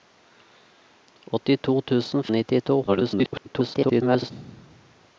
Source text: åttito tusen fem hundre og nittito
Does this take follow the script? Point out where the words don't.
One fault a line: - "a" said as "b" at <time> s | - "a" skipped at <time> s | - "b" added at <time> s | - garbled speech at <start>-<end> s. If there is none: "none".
- "fem hundre" skipped at 2.2 s
- garbled speech at 2.9-4.3 s